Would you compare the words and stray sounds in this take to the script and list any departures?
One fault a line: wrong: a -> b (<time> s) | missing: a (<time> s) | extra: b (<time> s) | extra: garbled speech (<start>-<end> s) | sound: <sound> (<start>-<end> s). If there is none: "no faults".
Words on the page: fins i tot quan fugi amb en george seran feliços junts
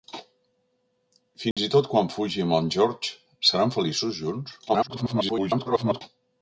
sound: dropout (1.5-1.6 s)
extra: garbled speech (4.7-6.0 s)